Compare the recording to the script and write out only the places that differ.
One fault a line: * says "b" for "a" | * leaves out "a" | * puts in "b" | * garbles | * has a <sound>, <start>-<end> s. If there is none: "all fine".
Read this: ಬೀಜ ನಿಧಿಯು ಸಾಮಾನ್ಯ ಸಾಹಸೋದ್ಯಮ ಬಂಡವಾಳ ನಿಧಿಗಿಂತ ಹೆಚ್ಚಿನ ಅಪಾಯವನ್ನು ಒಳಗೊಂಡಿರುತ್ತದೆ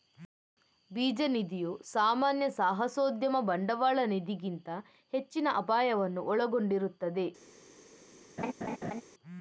* has a laugh, 8.4-9.0 s